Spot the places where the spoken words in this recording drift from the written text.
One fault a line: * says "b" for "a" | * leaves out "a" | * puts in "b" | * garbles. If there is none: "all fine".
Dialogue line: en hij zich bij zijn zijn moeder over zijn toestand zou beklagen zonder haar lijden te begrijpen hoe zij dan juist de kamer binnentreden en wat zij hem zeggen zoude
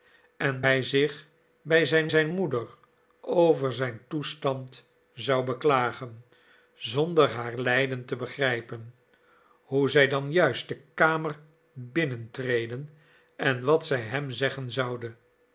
all fine